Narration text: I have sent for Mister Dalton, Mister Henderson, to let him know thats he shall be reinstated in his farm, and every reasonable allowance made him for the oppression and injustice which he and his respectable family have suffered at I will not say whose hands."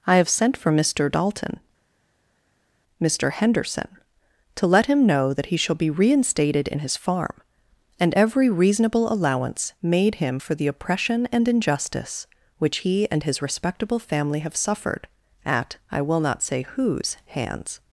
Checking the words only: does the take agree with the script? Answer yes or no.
no